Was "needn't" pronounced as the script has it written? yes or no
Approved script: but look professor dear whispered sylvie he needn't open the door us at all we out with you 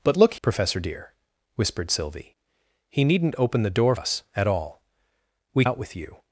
yes